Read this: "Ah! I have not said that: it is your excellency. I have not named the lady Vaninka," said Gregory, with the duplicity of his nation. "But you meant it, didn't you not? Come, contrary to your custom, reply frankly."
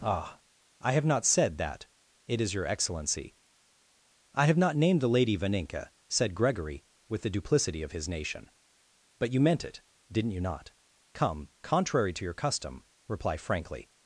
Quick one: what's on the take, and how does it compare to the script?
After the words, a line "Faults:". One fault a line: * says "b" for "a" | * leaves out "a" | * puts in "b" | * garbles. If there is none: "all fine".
"Ah! I have not said that: it is your excellency. I have not named the lady Vaninka," said Gregory, with the duplicity of his nation. "But you meant it, didn't you not? Come, contrary to your custom, reply frankly."
Faults:
all fine